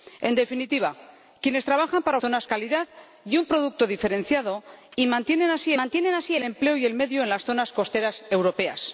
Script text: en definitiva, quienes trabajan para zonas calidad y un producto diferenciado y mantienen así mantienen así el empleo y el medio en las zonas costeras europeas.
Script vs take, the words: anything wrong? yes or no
no